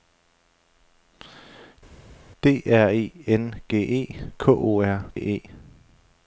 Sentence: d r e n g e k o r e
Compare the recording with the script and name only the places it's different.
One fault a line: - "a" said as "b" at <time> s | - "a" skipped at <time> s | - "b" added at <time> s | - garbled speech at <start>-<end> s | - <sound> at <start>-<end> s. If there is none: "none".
none